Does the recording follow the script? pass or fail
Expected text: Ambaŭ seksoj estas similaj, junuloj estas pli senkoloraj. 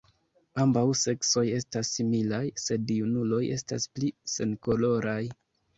fail